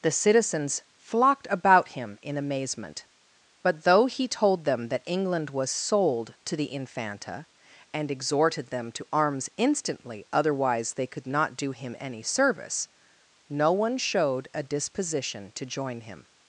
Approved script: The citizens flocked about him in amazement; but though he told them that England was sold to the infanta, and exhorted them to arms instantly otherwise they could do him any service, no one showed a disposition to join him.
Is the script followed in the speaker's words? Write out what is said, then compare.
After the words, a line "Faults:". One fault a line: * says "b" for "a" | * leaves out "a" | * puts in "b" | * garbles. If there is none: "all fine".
The citizens flocked about him in amazement; but though he told them that England was sold to the infanta, and exhorted them to arms instantly otherwise they could not do him any service, no one showed a disposition to join him.
Faults:
* puts in "not"